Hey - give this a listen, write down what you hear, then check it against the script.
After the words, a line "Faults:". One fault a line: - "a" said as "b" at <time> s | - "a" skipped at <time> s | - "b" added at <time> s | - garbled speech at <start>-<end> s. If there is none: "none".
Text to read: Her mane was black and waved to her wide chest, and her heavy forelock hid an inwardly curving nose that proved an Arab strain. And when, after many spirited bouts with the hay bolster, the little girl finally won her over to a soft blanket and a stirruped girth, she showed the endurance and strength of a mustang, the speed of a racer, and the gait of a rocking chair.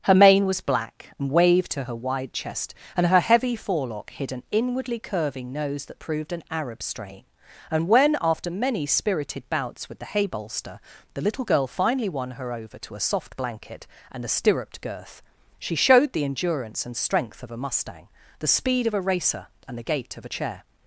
Her mane was black and waved to her wide chest, and her heavy forelock hid an inwardly curving nose that proved an Arab strain. And when, after many spirited bouts with the hay bolster, the little girl finally won her over to a soft blanket and a stirruped girth, she showed the endurance and strength of a mustang, the speed of a racer, and the gait of a chair.
Faults:
- "rocking" skipped at 20.3 s